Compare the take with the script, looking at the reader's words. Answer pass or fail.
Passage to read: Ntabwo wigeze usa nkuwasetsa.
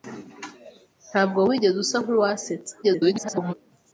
fail